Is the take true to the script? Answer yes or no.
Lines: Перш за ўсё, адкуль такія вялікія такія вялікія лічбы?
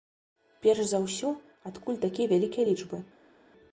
no